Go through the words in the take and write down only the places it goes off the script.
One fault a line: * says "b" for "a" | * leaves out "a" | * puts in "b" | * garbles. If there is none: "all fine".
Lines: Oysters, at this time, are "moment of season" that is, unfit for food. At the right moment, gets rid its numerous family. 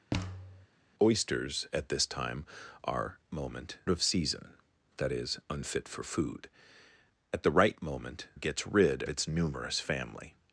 all fine